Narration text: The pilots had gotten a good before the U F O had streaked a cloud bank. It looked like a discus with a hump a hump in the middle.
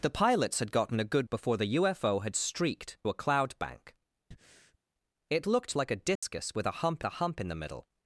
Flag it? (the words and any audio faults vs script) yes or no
yes